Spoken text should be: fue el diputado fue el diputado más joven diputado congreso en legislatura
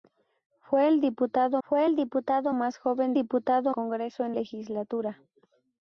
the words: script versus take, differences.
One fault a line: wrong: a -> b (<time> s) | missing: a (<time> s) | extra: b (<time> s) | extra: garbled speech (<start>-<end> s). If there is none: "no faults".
no faults